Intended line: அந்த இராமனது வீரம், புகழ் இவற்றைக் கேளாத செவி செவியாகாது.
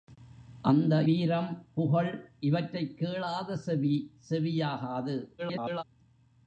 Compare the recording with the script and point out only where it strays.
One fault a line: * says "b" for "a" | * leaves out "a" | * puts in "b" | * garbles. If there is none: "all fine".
* leaves out "இராமனது"
* garbles